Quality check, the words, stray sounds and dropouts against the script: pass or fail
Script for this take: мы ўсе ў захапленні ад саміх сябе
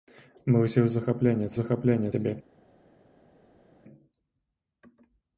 fail